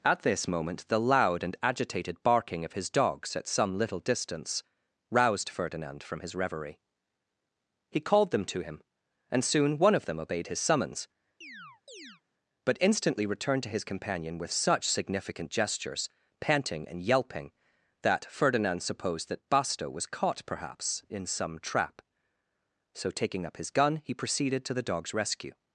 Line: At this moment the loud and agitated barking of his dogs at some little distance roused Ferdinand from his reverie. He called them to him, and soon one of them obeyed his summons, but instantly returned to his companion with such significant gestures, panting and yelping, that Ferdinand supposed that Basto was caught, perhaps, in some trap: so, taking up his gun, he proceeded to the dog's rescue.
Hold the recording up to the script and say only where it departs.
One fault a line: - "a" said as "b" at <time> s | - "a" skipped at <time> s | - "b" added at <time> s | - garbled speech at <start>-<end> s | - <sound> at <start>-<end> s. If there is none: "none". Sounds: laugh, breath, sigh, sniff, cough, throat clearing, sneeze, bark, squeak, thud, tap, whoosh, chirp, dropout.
- chirp at 11.4-12.2 s